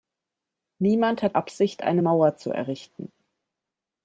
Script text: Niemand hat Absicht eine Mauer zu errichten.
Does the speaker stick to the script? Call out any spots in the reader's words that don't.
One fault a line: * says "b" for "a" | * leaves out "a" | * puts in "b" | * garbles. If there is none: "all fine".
all fine